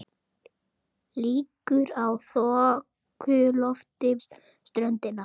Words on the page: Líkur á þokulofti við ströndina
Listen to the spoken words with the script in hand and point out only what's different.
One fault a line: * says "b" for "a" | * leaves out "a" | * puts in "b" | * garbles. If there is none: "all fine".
* leaves out "við"